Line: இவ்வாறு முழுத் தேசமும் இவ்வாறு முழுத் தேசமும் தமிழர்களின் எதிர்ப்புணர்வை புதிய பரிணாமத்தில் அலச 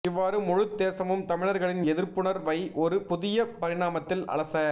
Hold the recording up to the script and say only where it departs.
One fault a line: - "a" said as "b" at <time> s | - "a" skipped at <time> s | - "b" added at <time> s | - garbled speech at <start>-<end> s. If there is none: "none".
- "இவ்வாறு முழுத் தேசமும்" skipped at 1.2 s
- "ஒரு" added at 2.7 s